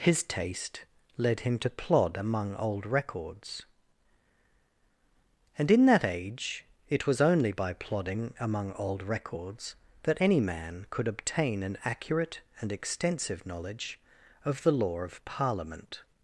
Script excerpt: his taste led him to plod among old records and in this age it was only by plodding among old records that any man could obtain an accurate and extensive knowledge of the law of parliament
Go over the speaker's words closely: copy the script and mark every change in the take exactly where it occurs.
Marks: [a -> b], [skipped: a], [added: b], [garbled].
his taste led him to plod among old records and in [this -> that] age it was only by plodding among old records that any man could obtain an accurate and extensive knowledge of the law of parliament